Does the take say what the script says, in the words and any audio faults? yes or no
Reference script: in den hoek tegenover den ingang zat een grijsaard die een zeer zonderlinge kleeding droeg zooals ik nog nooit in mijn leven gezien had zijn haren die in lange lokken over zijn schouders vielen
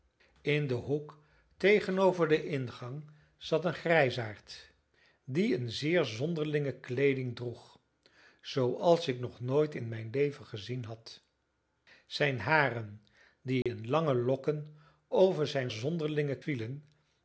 no